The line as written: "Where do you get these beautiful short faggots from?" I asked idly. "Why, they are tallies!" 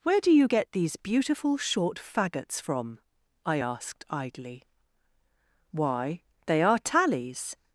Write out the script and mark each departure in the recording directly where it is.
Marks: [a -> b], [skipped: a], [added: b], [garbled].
"Where do you get these beautiful short faggots from?" I asked idly. "Why, they are tallies!"